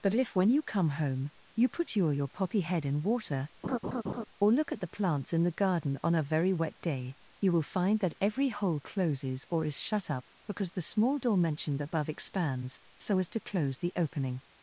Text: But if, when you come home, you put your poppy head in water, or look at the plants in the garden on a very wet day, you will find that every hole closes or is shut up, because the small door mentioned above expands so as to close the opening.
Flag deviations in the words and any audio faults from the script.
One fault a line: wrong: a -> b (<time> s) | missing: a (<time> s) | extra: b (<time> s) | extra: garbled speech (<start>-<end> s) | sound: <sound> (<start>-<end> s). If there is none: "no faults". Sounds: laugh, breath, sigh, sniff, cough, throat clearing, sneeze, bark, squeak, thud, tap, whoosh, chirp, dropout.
extra: your (2.1 s)
sound: laugh (3.6-4.2 s)